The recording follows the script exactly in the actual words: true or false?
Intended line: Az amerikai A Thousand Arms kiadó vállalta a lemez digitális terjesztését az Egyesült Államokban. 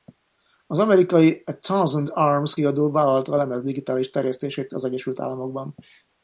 true